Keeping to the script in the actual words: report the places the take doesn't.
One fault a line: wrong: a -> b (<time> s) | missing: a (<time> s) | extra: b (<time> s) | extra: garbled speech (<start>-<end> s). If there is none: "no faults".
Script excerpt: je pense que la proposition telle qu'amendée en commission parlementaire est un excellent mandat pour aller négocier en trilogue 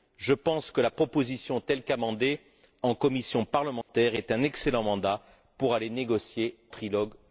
missing: en (6.6 s)